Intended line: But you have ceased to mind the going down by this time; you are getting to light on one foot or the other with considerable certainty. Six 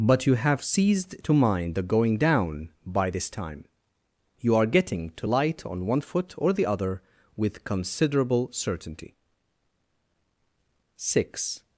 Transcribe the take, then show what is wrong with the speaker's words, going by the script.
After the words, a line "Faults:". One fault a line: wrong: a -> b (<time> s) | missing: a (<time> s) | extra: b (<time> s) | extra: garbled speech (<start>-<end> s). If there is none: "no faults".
But you have ceased to mind the going down by this time; you are getting to light on one foot or the other with considerable certainty. Six
Faults:
no faults